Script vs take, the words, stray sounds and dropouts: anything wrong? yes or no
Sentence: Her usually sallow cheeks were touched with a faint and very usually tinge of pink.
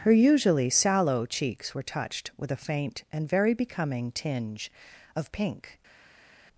yes